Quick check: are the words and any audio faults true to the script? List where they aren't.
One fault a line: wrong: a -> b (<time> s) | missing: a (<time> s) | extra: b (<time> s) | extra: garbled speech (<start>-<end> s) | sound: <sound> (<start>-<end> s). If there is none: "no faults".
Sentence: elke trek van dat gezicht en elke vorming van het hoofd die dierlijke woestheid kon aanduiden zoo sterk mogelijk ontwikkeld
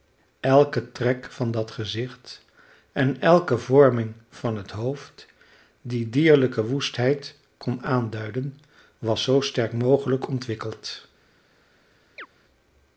extra: was (9.0 s)
sound: chirp (12.2-12.3 s)